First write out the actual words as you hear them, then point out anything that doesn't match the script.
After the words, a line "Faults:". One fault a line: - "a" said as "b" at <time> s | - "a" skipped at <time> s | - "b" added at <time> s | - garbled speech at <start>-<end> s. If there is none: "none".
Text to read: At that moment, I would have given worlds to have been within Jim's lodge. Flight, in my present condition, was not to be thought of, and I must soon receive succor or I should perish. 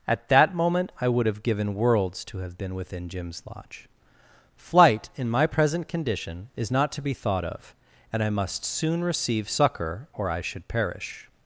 At that moment, I would have given worlds to have been within Jim's lodge. Flight, in my present condition, is not to be thought of, and I must soon receive succor or I should perish.
Faults:
- "was" said as "is" at 6.5 s